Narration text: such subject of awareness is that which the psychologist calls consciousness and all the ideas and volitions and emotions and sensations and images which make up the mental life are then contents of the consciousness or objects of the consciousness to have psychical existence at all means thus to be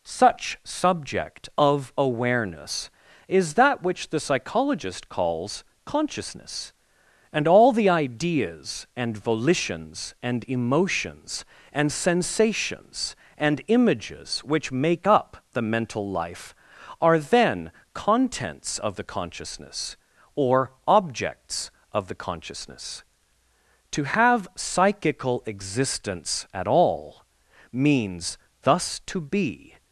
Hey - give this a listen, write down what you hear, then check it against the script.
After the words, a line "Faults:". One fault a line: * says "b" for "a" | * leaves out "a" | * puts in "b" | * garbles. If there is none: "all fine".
such subject of awareness is that which the psychologist calls consciousness and all the ideas and volitions and emotions and sensations and images which make up the mental life are then contents of the consciousness or objects of the consciousness to have psychical existence at all means thus to be
Faults:
all fine